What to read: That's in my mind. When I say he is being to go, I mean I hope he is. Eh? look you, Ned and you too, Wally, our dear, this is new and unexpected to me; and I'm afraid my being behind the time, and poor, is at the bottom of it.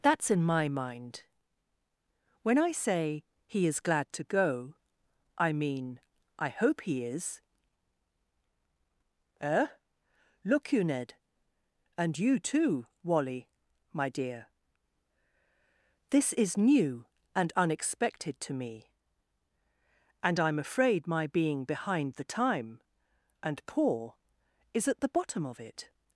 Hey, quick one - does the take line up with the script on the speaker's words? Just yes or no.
no